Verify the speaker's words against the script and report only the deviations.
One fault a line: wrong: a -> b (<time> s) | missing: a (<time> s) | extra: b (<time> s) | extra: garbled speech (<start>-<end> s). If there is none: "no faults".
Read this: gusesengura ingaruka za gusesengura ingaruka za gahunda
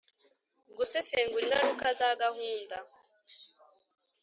missing: gusesengura ingaruka za (2.1 s)